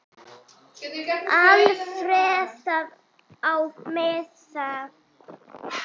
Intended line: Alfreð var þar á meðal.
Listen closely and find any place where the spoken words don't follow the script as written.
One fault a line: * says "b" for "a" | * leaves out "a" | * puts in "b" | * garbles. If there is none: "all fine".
* leaves out "var"